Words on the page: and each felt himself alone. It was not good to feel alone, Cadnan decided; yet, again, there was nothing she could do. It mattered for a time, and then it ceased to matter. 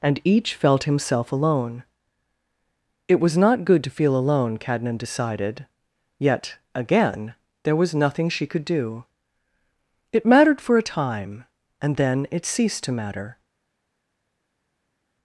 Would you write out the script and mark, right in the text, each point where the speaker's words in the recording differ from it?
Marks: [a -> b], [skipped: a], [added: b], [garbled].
and each felt himself alone. It was not good to feel alone, Cadnan decided; yet, again, there was nothing she could do. It mattered for a time, and then it ceased to matter.